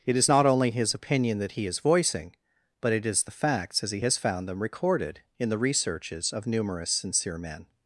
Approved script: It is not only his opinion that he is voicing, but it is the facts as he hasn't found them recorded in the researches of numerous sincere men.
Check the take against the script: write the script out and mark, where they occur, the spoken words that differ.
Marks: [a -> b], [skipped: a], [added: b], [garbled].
It is not only his opinion that he is voicing, but it is the facts as he [hasn't -> has] found them recorded in the researches of numerous sincere men.